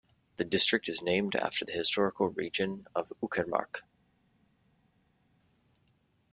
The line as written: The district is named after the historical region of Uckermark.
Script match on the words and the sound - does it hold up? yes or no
yes